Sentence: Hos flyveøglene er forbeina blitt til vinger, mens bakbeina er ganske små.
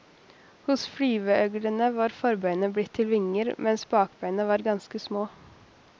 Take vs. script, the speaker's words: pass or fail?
fail